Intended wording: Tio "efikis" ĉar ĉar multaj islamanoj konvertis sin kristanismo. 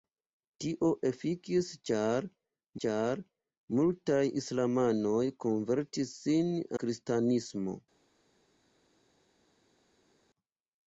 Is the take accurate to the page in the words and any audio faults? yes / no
yes